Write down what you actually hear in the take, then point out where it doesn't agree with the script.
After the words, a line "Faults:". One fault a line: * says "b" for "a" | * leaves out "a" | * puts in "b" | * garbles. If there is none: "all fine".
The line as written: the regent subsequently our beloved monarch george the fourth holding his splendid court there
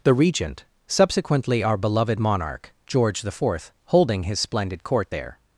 the regent subsequently our beloved monarch george the fourth holding his splendid court there
Faults:
all fine